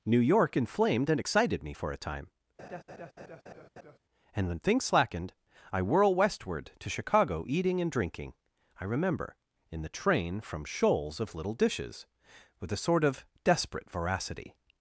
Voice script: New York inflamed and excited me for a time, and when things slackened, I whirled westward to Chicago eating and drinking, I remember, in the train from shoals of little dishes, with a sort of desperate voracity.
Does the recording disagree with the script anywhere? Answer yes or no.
yes